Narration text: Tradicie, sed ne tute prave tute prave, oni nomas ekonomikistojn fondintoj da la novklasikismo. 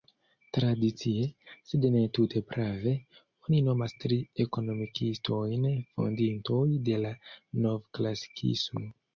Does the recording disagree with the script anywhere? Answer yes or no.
yes